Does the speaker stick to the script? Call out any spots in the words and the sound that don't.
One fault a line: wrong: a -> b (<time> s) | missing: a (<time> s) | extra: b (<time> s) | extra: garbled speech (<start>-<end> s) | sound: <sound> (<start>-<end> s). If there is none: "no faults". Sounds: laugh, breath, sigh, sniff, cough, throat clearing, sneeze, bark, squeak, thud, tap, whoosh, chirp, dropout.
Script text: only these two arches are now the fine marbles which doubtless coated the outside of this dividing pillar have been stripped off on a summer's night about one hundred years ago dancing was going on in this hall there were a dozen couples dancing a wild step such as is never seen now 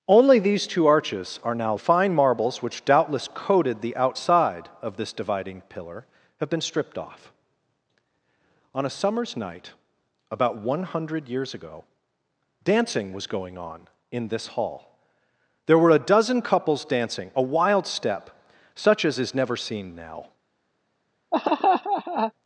sound: laugh (21.3-22.3 s)